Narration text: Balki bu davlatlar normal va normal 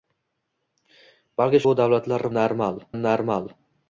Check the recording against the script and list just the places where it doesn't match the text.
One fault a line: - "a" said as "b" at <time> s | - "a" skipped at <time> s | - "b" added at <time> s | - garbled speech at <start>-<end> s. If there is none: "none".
none